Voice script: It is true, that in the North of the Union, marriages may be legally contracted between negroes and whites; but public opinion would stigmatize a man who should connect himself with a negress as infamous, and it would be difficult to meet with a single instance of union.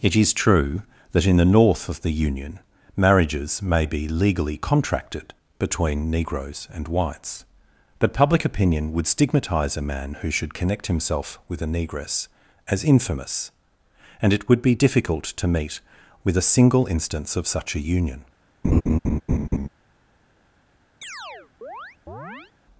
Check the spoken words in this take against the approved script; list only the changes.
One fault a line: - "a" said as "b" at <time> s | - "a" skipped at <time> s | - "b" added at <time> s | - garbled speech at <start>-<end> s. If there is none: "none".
- "such a" added at 17.5 s